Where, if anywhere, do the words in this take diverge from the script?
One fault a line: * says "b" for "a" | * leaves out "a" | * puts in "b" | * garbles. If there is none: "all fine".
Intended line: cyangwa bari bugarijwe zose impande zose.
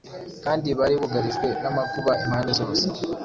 * says "kandi" for "cyangwa"
* says "n'amakuba" for "zose"